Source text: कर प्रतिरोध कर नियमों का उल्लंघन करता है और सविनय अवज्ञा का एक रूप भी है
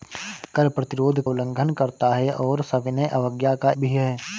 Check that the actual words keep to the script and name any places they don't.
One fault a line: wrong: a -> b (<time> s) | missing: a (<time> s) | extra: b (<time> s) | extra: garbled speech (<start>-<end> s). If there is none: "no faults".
missing: कर नियमों का (1.2 s)
missing: एक रूप (3.7 s)